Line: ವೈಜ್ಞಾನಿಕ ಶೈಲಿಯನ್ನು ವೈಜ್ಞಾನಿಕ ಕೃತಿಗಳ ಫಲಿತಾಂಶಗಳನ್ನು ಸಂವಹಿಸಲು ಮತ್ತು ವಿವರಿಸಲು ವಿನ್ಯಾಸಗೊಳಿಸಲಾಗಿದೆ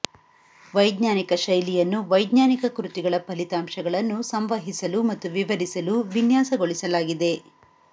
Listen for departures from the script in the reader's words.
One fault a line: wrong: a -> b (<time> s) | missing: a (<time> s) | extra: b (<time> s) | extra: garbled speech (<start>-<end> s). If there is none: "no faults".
no faults